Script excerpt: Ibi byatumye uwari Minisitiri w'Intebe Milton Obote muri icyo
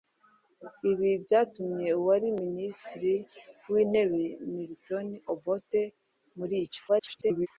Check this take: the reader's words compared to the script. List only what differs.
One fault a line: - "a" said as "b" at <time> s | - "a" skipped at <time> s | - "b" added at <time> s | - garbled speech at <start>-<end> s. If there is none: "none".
- garbled speech at 6.9-7.5 s